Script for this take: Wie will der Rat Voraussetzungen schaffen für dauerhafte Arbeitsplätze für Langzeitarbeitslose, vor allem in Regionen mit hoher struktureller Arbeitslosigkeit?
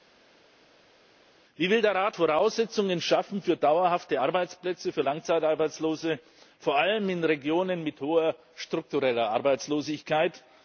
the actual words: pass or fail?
pass